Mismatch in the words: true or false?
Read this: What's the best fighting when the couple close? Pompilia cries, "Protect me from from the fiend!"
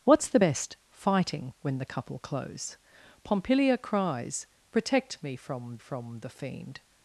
false